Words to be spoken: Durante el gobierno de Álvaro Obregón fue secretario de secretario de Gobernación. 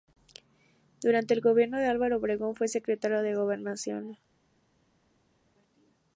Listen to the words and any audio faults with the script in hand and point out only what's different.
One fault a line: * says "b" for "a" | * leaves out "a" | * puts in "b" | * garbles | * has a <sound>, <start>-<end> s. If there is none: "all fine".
* leaves out "secretario de"